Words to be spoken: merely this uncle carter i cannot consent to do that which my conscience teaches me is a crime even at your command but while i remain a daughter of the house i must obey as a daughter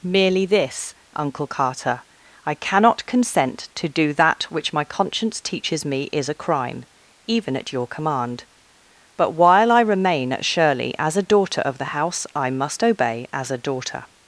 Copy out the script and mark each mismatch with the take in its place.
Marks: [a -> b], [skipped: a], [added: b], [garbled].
merely this uncle carter i cannot consent to do that which my conscience teaches me is a crime even at your command but while i remain [added: at shirley as] a daughter of the house i must obey as a daughter